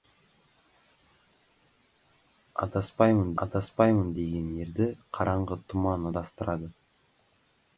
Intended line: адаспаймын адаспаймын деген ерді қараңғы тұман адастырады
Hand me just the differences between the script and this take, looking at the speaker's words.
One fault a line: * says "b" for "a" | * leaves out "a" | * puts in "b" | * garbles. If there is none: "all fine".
all fine